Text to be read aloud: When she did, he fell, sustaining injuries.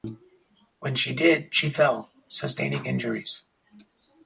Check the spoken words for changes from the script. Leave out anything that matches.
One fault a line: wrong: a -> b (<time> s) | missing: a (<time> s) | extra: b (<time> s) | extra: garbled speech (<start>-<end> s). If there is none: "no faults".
wrong: he -> she (1.5 s)